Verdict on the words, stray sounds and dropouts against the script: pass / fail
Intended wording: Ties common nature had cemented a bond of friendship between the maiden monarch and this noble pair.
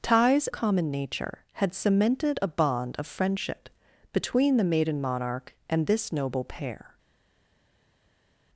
pass